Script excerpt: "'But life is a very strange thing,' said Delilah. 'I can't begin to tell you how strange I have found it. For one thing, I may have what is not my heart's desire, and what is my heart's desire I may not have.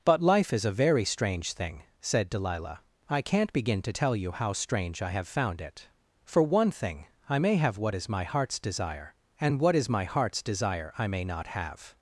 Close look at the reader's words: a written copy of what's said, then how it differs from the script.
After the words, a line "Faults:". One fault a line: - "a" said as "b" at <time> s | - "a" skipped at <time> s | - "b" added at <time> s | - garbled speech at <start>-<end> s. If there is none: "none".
"'But life is a very strange thing,' said Delilah. 'I can't begin to tell you how strange I have found it. For one thing, I may have what is my heart's desire, and what is my heart's desire I may not have.
Faults:
- "not" skipped at 8.1 s